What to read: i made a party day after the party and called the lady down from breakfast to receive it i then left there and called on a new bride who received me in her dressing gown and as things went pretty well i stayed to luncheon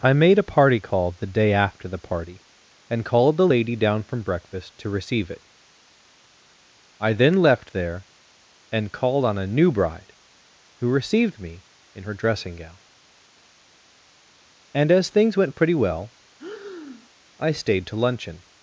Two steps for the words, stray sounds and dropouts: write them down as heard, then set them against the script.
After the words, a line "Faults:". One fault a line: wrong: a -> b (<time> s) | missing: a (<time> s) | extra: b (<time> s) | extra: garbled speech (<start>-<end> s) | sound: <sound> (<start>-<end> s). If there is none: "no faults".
i made a party call the day after the party and called the lady down from breakfast to receive it i then left there and called on a new bride who received me in her dressing gown and as things went pretty well i stayed to luncheon
Faults:
extra: call the (0.8 s)
sound: breath (16.4-17.1 s)